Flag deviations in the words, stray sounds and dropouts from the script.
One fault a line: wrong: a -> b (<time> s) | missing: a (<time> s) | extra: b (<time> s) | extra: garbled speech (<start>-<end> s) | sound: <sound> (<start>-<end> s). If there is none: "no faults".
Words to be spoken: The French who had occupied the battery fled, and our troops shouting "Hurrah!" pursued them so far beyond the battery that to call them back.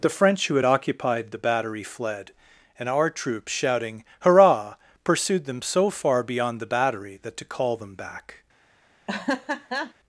sound: laugh (9.1-9.9 s)